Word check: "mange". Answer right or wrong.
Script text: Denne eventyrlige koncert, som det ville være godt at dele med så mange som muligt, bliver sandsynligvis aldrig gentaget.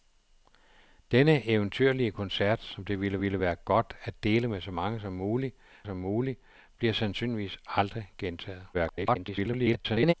right